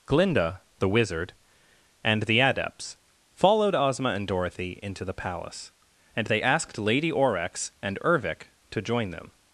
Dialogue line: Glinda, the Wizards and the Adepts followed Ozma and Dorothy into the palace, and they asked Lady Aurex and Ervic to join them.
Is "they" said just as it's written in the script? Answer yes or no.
yes